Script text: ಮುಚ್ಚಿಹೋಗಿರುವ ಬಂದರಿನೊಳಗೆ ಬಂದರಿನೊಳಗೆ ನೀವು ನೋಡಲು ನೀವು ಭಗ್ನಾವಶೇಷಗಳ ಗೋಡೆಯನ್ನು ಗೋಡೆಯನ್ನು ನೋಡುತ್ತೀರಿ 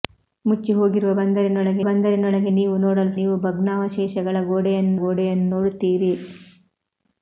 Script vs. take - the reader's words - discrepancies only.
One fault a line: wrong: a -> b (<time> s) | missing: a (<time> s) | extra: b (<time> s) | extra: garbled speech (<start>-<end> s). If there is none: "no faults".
no faults